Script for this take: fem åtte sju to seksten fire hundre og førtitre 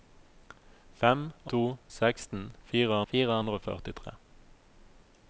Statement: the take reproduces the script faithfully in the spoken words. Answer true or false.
false